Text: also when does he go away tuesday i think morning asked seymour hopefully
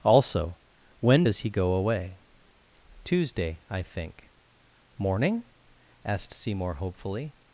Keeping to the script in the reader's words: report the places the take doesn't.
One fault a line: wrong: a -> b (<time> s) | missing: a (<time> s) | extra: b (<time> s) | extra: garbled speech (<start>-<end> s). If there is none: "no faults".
no faults